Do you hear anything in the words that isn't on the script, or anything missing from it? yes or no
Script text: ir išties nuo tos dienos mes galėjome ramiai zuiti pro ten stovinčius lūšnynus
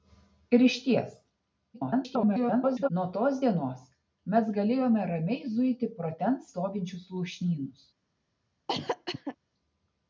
yes